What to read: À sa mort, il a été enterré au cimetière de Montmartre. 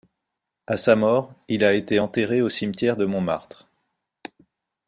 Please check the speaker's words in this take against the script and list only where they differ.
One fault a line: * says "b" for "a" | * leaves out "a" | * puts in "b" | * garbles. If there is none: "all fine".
all fine